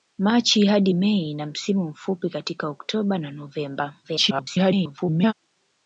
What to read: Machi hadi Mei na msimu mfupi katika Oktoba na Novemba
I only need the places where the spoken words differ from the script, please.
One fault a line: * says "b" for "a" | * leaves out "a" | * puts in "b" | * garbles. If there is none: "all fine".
* garbles